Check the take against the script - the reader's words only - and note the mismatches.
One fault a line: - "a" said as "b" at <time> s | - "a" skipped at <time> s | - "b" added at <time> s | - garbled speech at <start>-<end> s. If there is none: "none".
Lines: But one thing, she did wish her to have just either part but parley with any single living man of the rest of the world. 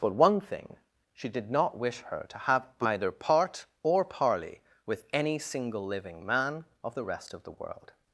- "not" added at 1.5 s
- "just" skipped at 2.6 s
- "but" said as "or" at 3.8 s